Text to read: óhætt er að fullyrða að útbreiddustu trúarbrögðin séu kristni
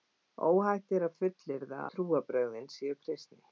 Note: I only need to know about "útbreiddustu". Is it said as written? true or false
false